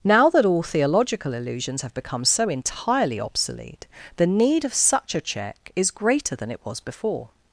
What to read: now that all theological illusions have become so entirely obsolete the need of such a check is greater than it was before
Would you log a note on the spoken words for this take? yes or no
no